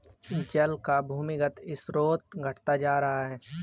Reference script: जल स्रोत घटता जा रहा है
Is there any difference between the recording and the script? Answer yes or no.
yes